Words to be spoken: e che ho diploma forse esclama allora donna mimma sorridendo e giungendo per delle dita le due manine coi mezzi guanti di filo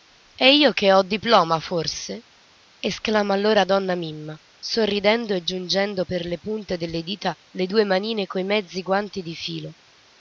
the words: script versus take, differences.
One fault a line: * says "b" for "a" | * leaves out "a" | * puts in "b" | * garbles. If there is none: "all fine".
* puts in "io"
* puts in "le punte"